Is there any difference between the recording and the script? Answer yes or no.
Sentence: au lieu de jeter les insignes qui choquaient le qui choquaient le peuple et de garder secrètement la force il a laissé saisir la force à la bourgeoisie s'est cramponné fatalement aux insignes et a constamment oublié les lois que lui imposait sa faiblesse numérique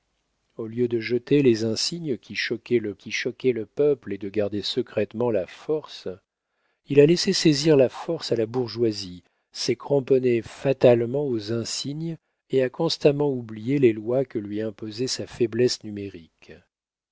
no